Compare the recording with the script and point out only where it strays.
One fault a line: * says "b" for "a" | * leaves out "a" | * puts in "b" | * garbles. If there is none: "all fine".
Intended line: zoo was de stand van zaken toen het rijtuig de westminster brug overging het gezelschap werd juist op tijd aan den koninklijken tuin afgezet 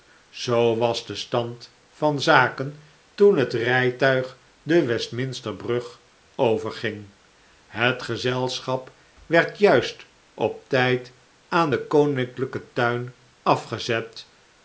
all fine